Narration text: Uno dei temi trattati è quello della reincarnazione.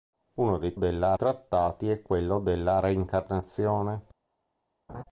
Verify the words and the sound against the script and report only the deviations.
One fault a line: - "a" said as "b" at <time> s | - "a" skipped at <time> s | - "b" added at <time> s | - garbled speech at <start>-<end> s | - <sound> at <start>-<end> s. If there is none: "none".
- "temi" said as "della" at 0.7 s
- laugh at 4.9-5.0 s